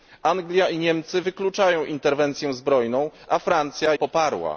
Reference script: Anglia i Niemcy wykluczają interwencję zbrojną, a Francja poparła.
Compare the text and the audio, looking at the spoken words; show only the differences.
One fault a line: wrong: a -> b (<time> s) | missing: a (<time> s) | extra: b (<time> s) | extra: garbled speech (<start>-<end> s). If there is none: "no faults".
no faults